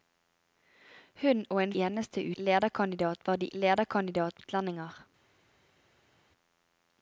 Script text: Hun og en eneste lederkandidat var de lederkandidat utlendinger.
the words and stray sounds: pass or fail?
pass